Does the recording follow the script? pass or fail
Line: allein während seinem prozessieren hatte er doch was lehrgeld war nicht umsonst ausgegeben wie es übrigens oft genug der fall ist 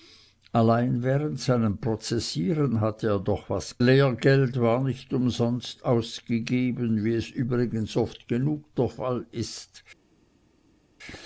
pass